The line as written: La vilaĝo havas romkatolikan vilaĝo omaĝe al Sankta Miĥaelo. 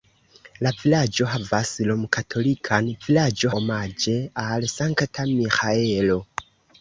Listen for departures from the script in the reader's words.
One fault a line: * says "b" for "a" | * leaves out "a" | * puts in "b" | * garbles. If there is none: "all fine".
all fine